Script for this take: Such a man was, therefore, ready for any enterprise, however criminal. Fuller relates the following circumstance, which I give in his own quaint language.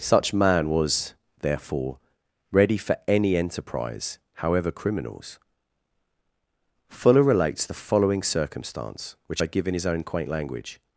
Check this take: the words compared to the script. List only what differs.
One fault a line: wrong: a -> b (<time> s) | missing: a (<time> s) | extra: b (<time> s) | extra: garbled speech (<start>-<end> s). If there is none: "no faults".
missing: a (0.3 s)
wrong: criminal -> criminals (4.7 s)